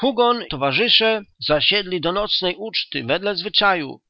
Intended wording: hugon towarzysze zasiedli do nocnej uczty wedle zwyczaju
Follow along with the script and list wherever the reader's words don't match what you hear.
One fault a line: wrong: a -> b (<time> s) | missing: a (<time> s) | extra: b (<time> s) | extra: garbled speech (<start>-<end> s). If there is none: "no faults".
no faults